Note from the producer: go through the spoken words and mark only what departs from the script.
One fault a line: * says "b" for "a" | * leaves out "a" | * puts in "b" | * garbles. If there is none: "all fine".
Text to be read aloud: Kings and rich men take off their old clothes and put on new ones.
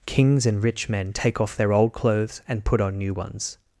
all fine